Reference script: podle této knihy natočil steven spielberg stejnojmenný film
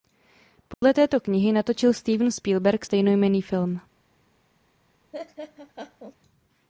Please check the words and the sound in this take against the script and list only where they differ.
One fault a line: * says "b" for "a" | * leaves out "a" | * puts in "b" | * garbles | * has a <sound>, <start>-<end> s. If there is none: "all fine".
* has a dropout, 0.7-0.8 s
* has a laugh, 5.1-6.2 s